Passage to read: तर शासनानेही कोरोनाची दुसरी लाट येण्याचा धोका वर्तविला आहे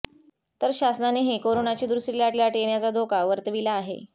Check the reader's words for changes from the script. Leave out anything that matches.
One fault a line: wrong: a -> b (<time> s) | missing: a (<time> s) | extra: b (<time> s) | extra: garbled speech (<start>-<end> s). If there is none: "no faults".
extra: लाट (2.4 s)